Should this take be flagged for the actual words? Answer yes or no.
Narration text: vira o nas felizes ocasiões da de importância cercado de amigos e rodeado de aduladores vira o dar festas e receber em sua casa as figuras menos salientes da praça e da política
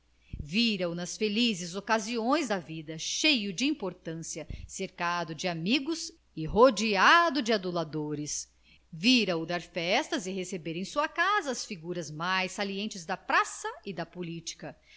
yes